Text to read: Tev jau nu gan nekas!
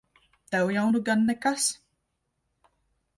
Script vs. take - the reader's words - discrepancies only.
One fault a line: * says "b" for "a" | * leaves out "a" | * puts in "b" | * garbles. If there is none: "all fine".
all fine